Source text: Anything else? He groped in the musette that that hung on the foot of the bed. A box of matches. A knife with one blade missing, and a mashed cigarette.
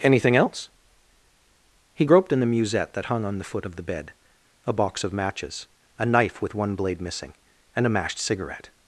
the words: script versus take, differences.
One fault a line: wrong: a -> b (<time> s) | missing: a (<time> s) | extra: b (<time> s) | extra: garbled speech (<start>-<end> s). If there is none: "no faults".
missing: that (3.1 s)